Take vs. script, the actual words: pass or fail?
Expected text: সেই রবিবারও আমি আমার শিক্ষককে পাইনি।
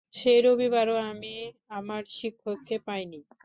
pass